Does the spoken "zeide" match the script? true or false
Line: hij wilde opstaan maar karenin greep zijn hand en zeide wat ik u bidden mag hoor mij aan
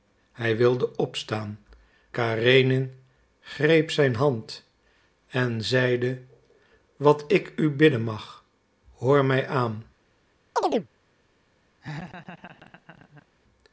true